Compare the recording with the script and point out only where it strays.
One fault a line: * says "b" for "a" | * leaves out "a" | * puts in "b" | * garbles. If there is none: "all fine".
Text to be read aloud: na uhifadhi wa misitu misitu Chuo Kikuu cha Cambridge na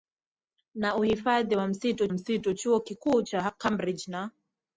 all fine